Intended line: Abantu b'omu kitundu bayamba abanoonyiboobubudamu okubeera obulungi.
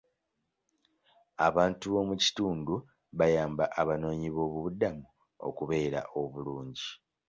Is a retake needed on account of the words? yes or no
no